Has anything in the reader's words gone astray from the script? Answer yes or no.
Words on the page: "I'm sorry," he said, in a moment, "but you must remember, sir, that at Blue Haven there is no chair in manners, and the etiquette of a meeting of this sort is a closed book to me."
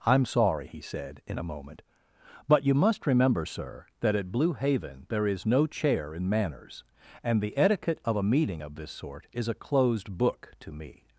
no